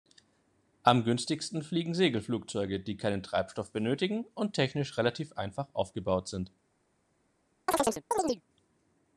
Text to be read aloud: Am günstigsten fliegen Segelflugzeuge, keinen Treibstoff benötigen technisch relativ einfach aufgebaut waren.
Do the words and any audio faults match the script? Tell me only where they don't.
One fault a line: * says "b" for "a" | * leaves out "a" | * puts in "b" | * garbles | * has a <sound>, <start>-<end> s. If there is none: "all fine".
* puts in "die"
* puts in "und"
* says "sind" for "waren"
* has a chirp, 7.7-8.4 s